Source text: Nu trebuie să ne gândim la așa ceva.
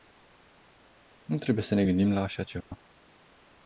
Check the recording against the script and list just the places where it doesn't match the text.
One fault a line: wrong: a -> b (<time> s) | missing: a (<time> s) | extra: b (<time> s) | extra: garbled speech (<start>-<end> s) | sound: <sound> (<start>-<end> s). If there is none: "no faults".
sound: dropout (2.6-2.7 s)